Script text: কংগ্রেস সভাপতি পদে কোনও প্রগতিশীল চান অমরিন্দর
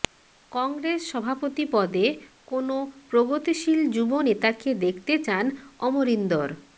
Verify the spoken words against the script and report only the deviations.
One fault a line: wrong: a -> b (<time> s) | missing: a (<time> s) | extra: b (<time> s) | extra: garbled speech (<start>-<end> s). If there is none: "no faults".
extra: যুব নেতাকে দেখতে (4.0 s)